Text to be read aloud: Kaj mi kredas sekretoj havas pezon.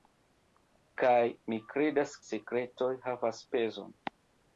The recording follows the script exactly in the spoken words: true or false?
true